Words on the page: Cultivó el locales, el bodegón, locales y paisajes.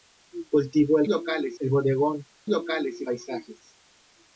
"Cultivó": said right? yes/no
yes